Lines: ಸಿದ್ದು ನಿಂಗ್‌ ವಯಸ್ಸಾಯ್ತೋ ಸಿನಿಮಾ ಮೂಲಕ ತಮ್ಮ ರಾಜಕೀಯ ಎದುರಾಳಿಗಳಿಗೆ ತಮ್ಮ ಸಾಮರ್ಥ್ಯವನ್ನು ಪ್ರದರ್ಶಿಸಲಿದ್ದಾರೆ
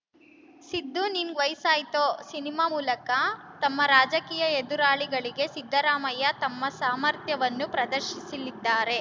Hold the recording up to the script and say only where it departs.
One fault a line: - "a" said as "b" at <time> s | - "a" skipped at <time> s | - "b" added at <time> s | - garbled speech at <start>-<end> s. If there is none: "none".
- "ಸಿದ್ದರಾಮಯ್ಯ" added at 5.5 s